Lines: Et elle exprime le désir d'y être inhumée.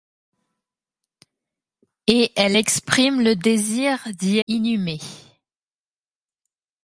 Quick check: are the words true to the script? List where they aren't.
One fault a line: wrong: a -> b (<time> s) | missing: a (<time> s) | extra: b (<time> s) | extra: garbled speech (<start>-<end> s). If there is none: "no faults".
missing: être (4.4 s)